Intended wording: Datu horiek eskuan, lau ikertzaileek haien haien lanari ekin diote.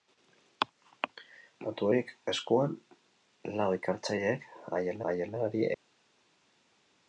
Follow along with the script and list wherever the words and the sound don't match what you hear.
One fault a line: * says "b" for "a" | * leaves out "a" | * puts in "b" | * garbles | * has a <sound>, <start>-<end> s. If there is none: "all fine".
all fine